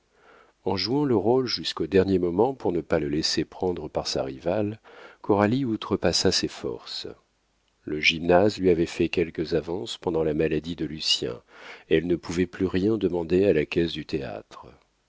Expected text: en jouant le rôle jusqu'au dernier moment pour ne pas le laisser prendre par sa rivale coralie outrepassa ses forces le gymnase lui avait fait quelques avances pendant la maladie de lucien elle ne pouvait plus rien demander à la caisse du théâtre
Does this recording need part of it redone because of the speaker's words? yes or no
no